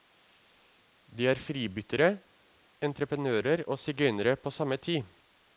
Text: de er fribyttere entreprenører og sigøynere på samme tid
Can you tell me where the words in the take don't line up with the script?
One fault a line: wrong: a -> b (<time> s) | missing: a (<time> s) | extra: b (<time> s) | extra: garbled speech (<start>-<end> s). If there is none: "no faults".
no faults